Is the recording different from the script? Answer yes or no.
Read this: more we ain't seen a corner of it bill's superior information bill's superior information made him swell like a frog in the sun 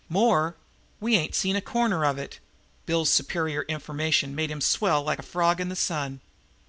yes